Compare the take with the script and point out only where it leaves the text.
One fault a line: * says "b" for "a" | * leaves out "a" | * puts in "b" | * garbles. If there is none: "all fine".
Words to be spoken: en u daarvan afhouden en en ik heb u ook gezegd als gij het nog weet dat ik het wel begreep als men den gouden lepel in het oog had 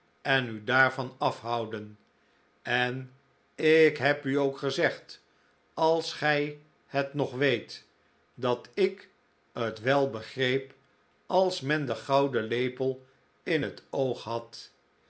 * leaves out "en"